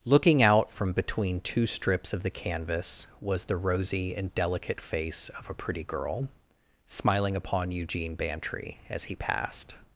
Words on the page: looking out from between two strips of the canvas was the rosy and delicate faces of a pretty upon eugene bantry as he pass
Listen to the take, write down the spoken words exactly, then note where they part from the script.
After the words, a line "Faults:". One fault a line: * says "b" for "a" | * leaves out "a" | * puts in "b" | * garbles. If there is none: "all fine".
looking out from between two strips of the canvas was the rosy and delicate face of a pretty girl smiling upon eugene bantry as he passed
Faults:
* says "face" for "faces"
* puts in "girl smiling"
* says "passed" for "pass"